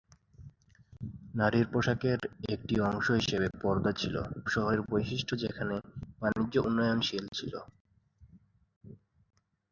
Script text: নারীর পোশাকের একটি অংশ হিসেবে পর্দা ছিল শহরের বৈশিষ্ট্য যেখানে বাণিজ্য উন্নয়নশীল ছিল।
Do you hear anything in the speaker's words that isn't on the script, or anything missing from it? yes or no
no